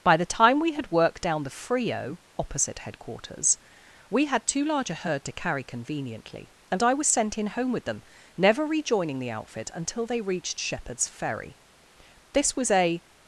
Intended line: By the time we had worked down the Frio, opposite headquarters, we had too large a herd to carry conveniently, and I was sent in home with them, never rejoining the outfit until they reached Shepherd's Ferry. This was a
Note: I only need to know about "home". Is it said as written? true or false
true